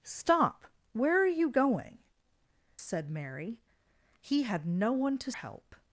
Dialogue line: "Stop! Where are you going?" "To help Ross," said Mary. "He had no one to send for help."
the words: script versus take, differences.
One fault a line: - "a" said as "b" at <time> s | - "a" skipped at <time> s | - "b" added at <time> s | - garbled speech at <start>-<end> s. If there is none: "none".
- "To help Ross" skipped at 2.0 s
- "send for" skipped at 5.3 s